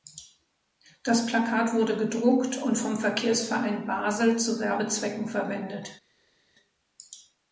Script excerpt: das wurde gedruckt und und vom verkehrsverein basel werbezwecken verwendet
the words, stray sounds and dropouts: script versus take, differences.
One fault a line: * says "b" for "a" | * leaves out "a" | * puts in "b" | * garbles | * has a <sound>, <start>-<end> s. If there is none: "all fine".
* puts in "plakat"
* leaves out "und"
* puts in "zu"